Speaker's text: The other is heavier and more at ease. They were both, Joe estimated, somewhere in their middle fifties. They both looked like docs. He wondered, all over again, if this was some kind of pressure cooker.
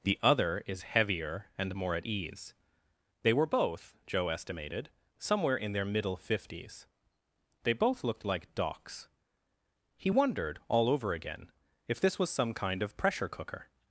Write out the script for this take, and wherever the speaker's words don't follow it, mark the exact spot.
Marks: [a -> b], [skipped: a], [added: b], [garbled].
The other is heavier and more at ease. They were both, Joe estimated, somewhere in their middle fifties. They both looked like docs. He wondered, all over again, if this was some kind of pressure cooker.